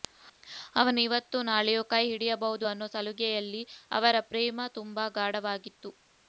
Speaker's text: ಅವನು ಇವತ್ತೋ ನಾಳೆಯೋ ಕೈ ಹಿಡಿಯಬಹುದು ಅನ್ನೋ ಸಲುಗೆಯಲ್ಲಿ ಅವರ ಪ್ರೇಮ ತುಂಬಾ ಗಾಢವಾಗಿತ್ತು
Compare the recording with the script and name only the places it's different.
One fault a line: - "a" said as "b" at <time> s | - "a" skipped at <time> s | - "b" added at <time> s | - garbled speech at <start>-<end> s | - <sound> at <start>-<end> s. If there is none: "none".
none